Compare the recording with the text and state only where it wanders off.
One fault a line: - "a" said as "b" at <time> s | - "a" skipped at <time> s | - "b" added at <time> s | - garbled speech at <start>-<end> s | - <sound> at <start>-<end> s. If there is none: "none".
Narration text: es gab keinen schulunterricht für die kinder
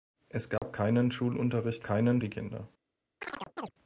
- dropout at 0.6-0.6 s
- "für" said as "keinen" at 1.8 s
- chirp at 3.2-3.7 s